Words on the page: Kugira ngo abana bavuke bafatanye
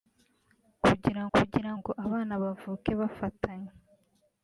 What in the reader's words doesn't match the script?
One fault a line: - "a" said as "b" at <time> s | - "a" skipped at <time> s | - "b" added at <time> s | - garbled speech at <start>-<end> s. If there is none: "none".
- "kugira" added at 1.3 s